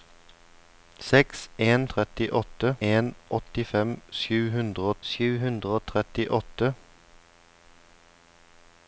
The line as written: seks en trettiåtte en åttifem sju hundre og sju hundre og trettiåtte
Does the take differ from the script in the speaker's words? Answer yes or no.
no